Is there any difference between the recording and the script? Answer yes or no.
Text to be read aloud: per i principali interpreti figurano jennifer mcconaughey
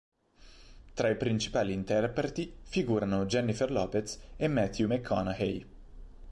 yes